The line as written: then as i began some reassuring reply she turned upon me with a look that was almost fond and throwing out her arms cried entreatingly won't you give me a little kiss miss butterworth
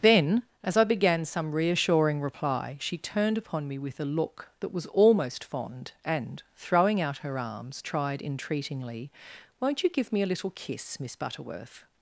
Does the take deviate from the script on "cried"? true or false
true